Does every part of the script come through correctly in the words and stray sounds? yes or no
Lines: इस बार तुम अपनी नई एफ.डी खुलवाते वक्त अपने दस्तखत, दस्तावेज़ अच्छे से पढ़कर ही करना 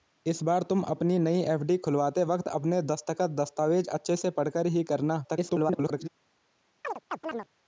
no